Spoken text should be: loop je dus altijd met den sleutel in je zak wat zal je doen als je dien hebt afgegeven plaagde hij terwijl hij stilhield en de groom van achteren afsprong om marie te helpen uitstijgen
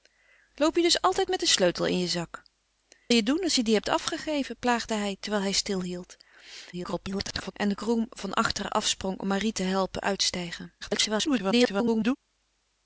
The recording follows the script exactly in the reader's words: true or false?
false